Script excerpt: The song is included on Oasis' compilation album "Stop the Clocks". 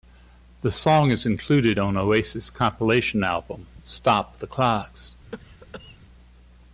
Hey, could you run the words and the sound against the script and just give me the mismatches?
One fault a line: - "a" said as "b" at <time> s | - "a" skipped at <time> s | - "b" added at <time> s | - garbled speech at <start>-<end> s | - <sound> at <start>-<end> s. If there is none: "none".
- cough at 5.3-6.0 s